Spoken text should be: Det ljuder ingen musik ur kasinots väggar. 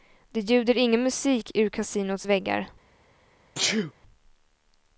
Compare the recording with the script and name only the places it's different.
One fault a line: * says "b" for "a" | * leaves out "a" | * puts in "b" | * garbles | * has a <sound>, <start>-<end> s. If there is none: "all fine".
* has a sneeze, 3.5-3.9 s